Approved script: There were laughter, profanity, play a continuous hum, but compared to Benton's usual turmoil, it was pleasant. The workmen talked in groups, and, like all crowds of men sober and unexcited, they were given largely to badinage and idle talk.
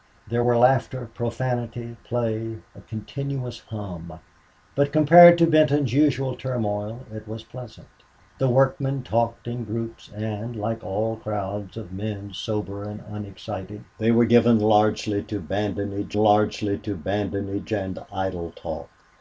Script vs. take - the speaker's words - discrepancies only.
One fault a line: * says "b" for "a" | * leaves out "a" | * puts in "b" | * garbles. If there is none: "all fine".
* puts in "largely to badinage"